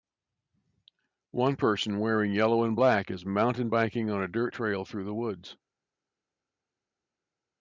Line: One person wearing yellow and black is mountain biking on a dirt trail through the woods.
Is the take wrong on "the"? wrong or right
right